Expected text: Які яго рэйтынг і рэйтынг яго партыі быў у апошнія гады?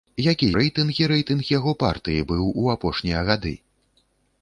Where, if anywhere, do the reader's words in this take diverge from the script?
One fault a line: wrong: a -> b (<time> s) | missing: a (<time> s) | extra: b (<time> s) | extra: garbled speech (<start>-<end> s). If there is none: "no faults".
missing: яго (0.5 s)